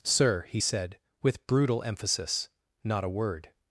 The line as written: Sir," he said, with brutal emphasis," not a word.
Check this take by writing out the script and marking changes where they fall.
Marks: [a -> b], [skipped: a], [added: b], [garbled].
Sir," he said, with brutal emphasis," not a word.